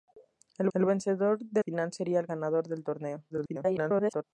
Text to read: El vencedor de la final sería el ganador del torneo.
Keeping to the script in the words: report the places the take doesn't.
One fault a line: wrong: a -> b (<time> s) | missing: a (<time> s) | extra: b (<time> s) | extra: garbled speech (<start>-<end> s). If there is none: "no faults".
extra: el (0.7 s)
missing: la (1.6 s)
extra: garbled speech (3.3-4.2 s)